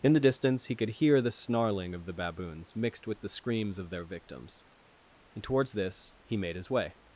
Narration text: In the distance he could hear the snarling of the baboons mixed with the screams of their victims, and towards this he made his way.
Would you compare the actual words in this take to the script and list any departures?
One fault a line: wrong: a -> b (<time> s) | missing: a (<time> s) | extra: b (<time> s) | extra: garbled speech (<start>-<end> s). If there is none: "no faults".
no faults